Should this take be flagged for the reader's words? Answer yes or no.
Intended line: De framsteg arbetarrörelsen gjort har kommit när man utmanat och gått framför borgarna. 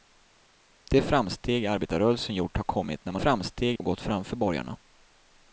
yes